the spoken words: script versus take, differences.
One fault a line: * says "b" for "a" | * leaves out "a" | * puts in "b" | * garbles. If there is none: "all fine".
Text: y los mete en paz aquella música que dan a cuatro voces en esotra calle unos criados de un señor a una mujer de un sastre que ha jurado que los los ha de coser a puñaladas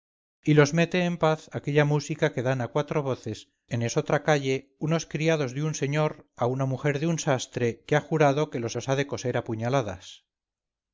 all fine